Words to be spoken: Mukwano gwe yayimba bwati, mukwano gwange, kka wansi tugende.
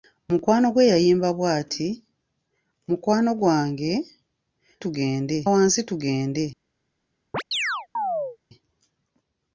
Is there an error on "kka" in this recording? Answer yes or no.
yes